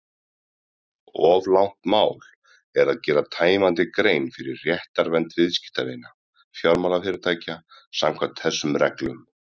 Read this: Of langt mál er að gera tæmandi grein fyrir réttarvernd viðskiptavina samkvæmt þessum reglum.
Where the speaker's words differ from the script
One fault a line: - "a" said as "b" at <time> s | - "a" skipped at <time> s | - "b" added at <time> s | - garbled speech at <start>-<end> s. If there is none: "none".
- "fjármálafyrirtækja" added at 6.6 s